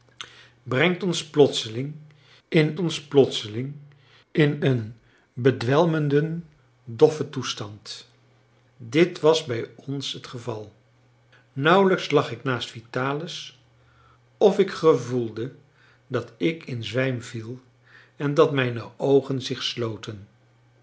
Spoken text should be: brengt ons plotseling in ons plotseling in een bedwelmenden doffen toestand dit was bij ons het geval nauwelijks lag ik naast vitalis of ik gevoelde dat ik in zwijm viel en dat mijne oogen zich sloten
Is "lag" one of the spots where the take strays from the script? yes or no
no